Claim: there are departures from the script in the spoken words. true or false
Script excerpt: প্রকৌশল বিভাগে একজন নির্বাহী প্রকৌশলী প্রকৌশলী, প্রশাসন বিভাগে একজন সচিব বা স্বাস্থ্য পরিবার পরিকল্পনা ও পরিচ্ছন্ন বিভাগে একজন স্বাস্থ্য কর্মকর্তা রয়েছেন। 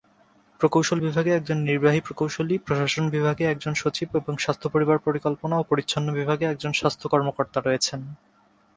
true